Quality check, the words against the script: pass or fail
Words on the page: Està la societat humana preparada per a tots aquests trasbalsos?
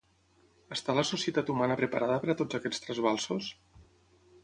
pass